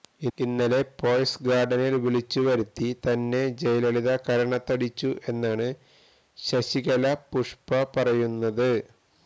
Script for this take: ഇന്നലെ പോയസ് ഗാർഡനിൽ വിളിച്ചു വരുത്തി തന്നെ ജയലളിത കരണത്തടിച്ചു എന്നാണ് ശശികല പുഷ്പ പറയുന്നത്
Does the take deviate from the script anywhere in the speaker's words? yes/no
no